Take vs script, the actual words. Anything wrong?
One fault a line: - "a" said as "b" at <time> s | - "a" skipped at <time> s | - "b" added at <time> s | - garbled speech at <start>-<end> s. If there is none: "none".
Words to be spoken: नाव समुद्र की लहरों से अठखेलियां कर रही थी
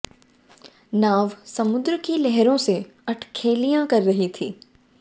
none